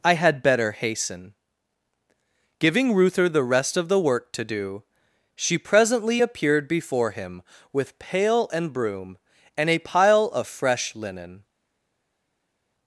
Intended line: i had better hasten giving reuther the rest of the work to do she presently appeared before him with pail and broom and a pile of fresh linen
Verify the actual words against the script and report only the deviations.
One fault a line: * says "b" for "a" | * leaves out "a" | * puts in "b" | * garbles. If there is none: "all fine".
all fine